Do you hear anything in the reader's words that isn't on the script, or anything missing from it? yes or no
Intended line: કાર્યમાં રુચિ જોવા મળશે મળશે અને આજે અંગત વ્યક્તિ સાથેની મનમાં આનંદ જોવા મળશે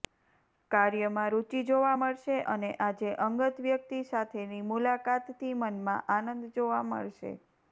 yes